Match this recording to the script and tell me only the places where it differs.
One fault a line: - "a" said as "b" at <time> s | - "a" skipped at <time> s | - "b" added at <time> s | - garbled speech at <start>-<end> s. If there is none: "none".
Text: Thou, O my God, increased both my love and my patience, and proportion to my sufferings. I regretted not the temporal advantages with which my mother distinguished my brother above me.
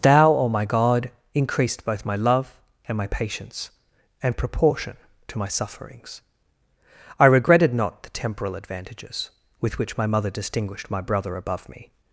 none